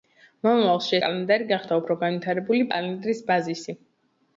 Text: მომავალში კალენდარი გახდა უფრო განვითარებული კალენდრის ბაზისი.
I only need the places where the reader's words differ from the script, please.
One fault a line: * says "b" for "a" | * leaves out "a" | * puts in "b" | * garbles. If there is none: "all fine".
all fine